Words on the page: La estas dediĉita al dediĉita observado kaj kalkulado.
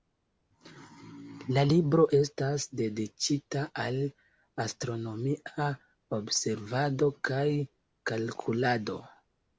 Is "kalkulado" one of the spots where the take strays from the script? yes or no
no